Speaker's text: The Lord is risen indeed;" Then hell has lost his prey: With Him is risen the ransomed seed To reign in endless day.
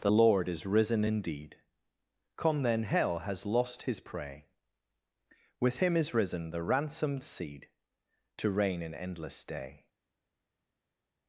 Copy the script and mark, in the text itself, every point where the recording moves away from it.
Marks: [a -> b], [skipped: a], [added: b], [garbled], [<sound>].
The Lord is risen indeed;" [added: come] Then hell has lost his prey: With Him is risen the ransomed seed To reign in endless day.